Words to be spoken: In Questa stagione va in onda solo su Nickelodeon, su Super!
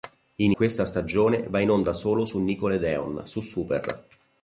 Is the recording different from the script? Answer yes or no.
no